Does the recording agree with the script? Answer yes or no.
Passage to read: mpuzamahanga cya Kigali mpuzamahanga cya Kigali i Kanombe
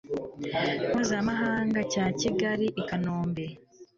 no